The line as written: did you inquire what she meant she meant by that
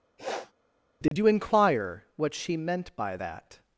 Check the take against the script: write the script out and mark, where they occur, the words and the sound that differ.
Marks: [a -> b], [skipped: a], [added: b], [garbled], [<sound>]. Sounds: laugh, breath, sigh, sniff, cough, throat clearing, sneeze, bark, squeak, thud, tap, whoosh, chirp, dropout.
[sniff] did [dropout] you inquire what she meant [skipped: she meant] by that